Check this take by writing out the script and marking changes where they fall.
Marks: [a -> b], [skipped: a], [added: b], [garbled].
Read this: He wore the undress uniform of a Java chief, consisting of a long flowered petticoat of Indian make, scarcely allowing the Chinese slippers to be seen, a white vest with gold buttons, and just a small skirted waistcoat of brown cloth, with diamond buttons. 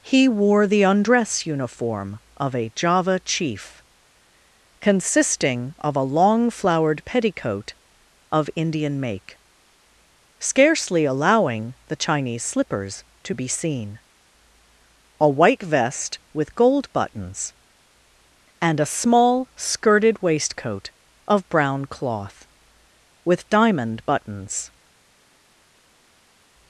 He wore the undress uniform of a Java chief, consisting of a long flowered petticoat of Indian make, scarcely allowing the Chinese slippers to be seen, a white vest with gold buttons, and [skipped: just] a small skirted waistcoat of brown cloth, with diamond buttons.